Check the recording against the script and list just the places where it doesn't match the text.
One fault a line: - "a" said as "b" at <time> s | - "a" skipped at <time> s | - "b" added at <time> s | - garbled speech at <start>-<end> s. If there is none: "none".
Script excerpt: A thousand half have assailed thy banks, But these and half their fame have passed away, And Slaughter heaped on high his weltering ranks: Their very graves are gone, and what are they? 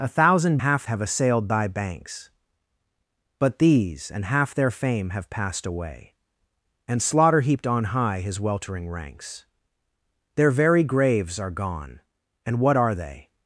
none